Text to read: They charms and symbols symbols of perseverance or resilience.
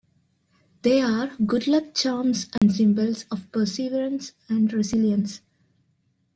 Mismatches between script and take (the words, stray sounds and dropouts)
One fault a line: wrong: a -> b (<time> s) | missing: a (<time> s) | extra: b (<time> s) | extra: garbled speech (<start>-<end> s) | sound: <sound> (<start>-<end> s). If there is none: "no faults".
extra: are good luck (1.0 s)
sound: dropout (2.6-2.6 s)
missing: symbols (3.3 s)
wrong: or -> and (4.5 s)